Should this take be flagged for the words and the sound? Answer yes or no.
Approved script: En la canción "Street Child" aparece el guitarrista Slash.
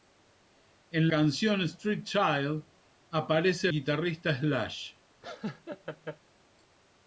yes